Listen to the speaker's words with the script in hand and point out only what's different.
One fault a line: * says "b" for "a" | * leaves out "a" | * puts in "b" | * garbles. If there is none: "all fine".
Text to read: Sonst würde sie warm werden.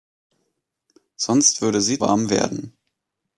all fine